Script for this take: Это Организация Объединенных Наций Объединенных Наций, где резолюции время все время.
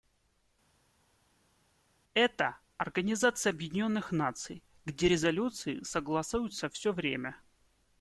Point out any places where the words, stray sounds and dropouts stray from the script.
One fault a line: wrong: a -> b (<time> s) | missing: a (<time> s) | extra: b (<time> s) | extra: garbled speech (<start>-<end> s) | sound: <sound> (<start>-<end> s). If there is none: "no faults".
missing: Объединенных Наций (4.6 s)
wrong: время -> согласуются (5.8 s)